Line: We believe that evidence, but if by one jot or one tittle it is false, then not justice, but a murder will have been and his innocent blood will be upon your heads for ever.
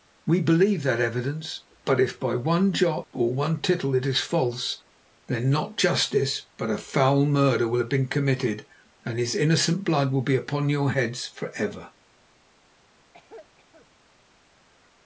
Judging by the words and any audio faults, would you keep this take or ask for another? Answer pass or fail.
fail